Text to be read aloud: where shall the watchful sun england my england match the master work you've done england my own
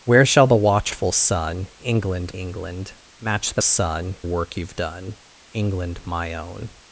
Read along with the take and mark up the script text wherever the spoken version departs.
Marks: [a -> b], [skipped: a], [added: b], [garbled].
where shall the watchful sun england [skipped: my] england match the [master -> sun] work you've done england my own